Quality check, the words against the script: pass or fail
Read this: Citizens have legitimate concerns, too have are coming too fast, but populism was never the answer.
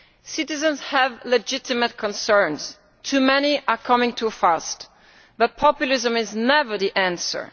fail